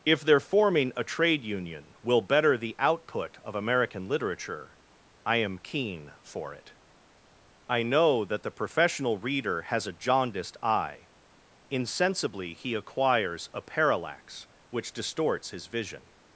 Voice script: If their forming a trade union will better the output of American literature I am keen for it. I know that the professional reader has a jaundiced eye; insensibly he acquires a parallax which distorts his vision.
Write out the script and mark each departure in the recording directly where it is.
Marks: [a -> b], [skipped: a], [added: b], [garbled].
If their forming a trade union will better the output of American literature I am keen for it. I know that the professional reader has a jaundiced eye; insensibly he acquires a parallax which distorts his vision.